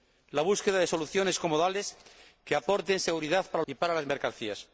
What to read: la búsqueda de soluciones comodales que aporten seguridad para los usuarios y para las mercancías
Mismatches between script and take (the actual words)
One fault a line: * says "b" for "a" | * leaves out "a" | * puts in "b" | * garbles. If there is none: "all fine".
* leaves out "los usuarios"